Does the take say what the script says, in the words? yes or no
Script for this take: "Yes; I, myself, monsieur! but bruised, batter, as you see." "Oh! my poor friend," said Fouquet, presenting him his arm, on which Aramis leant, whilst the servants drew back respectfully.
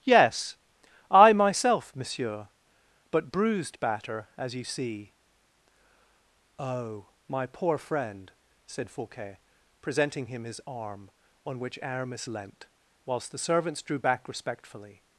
yes